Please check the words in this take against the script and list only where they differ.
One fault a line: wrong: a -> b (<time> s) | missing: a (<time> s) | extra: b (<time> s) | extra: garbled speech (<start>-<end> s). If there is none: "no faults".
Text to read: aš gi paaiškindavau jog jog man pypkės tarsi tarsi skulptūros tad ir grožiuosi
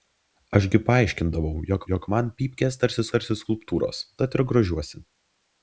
no faults